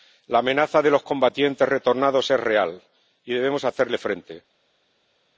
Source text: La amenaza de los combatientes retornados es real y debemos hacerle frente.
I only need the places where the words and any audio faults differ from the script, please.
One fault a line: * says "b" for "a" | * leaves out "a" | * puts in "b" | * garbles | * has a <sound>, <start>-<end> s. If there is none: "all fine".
all fine